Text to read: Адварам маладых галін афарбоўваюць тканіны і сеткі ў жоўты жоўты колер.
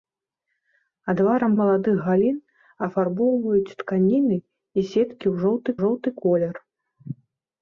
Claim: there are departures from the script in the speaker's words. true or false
false